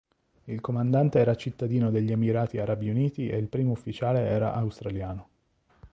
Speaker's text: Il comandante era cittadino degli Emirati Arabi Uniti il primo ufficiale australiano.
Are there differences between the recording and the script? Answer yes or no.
yes